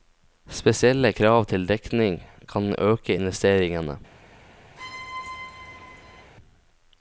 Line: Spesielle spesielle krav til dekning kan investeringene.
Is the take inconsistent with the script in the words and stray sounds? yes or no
yes